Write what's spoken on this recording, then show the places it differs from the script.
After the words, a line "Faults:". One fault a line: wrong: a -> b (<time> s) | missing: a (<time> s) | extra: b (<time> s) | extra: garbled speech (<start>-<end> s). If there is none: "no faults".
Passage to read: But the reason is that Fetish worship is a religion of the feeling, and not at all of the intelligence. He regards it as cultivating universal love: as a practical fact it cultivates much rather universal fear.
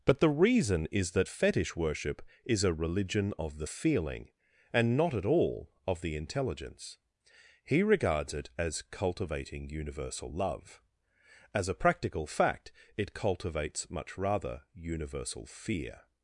But the reason is that Fetish worship is a religion of the feeling, and not at all of the intelligence. He regards it as cultivating universal love: as a practical fact it cultivates much rather universal fear.
Faults:
no faults